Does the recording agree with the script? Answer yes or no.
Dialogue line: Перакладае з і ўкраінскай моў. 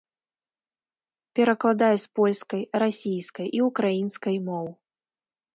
no